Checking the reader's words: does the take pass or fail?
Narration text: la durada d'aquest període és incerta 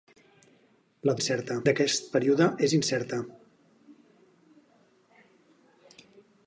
fail